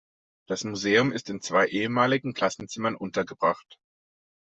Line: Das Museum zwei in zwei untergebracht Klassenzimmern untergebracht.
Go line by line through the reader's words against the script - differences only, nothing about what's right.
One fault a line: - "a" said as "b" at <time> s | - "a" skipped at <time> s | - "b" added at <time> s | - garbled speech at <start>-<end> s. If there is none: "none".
- "zwei" said as "ist" at 1.1 s
- "untergebracht" said as "ehemaligen" at 1.7 s